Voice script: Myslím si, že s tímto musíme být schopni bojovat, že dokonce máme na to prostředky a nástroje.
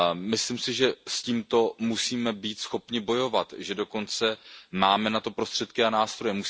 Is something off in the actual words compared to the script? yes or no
no